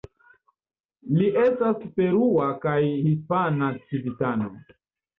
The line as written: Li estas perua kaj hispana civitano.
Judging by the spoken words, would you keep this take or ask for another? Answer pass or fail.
pass